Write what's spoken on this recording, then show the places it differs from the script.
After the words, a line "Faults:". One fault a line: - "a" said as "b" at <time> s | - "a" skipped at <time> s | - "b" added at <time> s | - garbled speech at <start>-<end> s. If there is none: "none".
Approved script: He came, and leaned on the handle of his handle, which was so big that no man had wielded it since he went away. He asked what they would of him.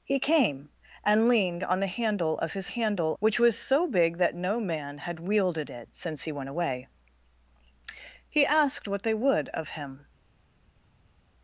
He came, and leaned on the handle of his handle, which was so big that no man had wielded it since he went away. He asked what they would of him.
Faults:
none